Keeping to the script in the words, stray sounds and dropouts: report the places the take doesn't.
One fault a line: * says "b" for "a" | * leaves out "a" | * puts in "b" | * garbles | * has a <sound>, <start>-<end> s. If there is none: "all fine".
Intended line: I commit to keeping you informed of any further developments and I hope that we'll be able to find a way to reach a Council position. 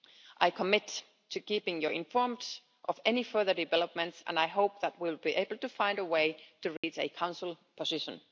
* has a dropout, 6.8-6.8 s